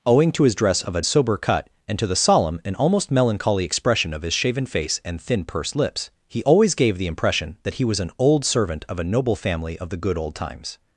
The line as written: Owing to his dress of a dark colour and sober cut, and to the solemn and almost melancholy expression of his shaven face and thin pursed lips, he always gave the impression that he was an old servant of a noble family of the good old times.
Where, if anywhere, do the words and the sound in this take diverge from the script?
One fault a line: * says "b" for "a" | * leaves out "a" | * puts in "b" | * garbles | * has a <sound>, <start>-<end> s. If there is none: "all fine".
* leaves out "dark colour and"